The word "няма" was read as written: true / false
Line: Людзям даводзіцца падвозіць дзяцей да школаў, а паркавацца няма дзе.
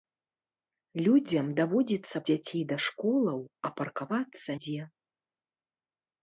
false